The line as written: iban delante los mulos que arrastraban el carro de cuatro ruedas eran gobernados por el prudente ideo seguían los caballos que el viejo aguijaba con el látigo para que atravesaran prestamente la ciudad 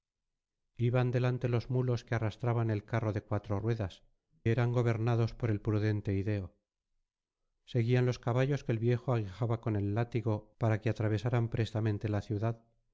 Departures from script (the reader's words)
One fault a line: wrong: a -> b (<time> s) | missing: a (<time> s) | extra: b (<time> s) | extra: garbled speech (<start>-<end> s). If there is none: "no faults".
no faults